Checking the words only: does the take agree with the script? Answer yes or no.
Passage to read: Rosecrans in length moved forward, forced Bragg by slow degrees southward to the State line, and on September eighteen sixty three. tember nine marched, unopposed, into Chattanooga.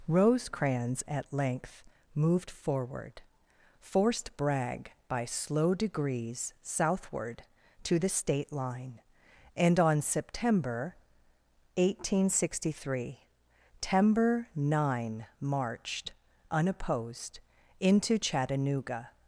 no